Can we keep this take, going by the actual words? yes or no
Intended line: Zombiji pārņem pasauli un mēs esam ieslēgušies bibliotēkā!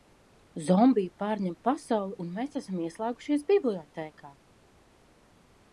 yes